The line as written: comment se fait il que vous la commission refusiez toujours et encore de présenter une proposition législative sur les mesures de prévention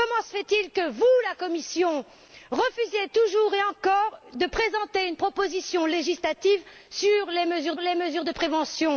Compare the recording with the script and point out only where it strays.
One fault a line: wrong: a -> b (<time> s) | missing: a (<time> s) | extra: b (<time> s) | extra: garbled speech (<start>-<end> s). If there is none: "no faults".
extra: les mesures (7.8 s)